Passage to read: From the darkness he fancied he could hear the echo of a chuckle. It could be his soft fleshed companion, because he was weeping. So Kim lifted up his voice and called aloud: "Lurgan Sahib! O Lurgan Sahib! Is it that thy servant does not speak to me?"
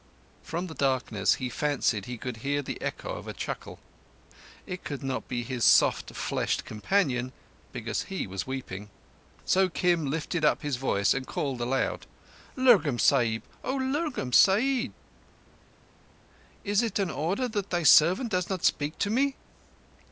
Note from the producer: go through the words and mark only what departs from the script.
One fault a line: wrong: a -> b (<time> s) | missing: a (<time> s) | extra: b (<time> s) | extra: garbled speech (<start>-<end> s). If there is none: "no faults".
extra: not (5.0 s)
extra: an order (17.0 s)